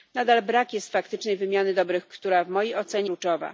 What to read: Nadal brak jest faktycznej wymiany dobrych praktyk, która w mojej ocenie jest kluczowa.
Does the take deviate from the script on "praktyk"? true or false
true